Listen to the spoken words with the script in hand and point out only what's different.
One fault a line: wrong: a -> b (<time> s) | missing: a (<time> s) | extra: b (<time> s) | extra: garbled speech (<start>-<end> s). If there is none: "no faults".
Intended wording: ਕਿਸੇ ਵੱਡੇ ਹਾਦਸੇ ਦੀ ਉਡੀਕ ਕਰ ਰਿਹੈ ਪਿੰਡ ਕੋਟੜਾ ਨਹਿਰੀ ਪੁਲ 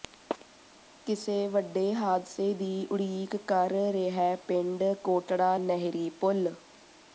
no faults